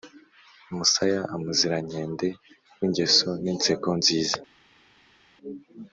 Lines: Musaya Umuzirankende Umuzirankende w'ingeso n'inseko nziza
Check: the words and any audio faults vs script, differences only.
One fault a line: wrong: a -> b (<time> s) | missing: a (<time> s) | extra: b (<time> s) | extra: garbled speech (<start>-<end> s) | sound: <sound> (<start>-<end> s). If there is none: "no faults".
missing: Umuzirankende (2.3 s)